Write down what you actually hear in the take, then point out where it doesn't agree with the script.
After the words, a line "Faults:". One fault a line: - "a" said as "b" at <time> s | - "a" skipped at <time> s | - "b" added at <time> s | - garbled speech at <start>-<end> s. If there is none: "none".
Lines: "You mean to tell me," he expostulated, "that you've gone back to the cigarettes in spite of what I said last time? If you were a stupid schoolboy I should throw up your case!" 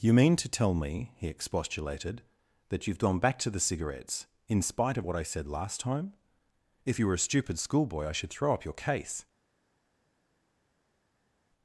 "You mean to tell me," he expostulated, "that you've gone back to the cigarettes in spite of what I said last time? If you were a stupid schoolboy I should throw up your case!"
Faults:
none